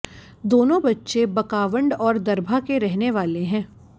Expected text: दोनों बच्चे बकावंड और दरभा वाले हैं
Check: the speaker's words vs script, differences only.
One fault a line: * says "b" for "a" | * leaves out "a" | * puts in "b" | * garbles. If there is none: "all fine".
* puts in "के रहने"